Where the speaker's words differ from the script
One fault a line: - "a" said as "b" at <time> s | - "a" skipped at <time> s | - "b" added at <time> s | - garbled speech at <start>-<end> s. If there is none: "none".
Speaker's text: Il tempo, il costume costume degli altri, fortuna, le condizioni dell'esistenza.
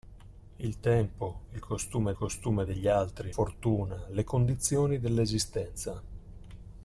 none